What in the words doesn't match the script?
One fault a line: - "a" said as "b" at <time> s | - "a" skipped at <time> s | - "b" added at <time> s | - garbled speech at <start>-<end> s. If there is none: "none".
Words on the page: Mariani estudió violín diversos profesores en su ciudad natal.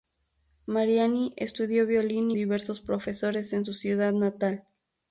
none